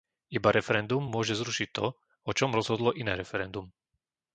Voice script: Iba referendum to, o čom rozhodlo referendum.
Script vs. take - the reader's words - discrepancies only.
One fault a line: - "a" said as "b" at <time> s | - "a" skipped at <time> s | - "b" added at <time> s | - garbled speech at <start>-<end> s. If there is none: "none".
- "môže zrušiť" added at 1.0 s
- "iné" added at 3.0 s